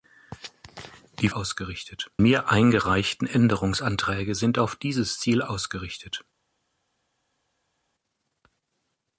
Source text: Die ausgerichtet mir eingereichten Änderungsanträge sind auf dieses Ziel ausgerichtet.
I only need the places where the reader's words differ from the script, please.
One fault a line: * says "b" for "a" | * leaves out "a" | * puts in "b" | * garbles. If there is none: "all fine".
all fine